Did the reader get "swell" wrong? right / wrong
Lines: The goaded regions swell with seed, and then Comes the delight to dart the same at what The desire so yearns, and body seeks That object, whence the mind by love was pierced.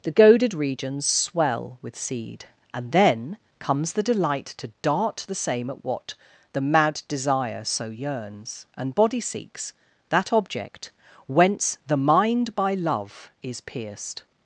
right